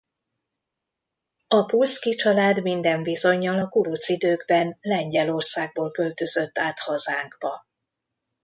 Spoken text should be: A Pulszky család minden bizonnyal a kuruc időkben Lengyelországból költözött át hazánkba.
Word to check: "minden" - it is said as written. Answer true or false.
true